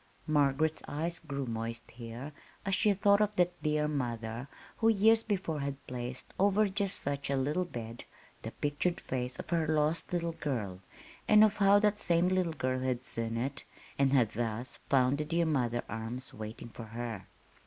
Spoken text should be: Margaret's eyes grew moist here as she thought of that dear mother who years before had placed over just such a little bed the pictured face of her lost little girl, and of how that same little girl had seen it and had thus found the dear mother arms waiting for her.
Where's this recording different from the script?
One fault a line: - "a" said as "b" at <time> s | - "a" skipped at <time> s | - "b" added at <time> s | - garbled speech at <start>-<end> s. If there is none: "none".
none